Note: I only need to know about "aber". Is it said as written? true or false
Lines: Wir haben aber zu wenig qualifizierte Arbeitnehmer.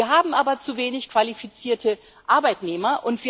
true